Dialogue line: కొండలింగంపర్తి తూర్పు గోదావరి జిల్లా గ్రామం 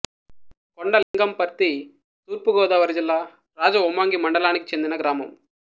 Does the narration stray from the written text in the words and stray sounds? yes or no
yes